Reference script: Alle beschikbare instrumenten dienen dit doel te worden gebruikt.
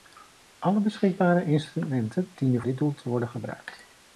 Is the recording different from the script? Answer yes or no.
no